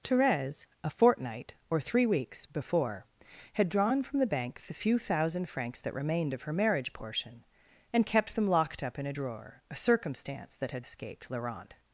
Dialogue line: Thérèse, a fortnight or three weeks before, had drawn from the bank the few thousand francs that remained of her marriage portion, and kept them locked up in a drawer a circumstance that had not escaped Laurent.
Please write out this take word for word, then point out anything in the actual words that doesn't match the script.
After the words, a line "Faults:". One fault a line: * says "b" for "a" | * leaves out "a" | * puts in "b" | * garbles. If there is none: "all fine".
Thérèse, a fortnight or three weeks before, had drawn from the bank the few thousand francs that remained of her marriage portion, and kept them locked up in a drawer a circumstance that had escaped Laurent.
Faults:
* leaves out "not"